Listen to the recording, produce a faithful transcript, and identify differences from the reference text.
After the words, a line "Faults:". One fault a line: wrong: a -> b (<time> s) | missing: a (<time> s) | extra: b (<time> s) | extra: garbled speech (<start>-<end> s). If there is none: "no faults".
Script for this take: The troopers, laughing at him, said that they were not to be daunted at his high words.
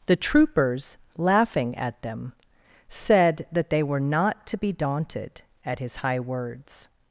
The troopers, laughing at them, said that they were not to be daunted at his high words.
Faults:
wrong: him -> them (2.0 s)